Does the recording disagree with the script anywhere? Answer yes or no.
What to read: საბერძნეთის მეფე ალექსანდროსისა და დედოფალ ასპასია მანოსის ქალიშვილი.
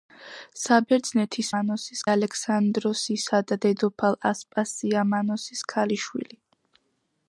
yes